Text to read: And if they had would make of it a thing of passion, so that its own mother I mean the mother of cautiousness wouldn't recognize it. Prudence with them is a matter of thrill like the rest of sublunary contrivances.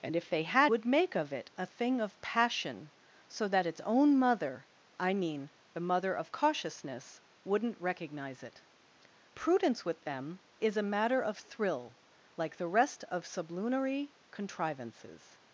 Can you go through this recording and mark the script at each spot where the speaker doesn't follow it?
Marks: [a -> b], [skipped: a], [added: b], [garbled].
And if they had would make of it a thing of passion, so that its own mother I mean the mother of cautiousness wouldn't recognize it. Prudence with them is a matter of thrill like the rest of sublunary contrivances.